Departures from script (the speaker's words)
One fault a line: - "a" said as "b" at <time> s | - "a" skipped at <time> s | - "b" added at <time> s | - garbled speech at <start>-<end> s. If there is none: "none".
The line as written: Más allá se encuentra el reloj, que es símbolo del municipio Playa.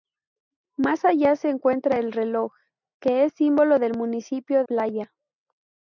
none